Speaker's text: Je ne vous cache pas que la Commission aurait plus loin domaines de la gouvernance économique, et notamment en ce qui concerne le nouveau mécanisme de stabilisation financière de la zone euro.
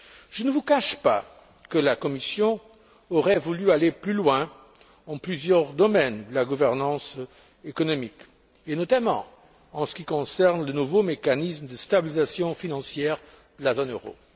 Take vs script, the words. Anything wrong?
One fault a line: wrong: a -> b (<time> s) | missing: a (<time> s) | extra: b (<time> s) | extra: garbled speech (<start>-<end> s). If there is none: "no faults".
extra: voulu aller (3.4 s)
extra: dans plusieurs (5.1 s)